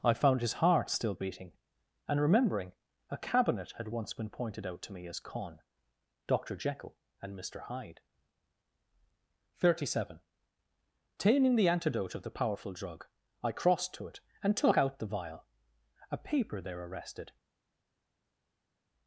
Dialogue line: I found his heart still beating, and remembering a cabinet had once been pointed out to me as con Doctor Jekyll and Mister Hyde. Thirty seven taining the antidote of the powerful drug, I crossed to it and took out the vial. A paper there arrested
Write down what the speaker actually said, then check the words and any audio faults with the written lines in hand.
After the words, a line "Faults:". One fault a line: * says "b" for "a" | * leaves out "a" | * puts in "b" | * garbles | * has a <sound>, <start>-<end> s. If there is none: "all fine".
I found his heart still beating, and remembering a cabinet had once been pointed out to me as con Doctor Jekyll and Mister Hyde. Thirty seven taining the antidote of the powerful drug, I crossed to it and took out the vial. A paper there arrested
Faults:
all fine